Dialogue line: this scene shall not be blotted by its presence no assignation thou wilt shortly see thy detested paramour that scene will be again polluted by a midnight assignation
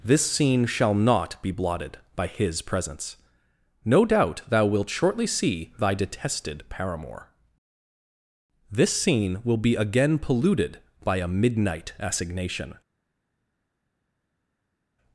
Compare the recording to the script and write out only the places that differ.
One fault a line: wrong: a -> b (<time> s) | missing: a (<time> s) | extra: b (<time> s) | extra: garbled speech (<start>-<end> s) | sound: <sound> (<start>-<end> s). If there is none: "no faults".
wrong: its -> his (2.3 s)
wrong: assignation -> doubt (4.1 s)
wrong: that -> this (8.7 s)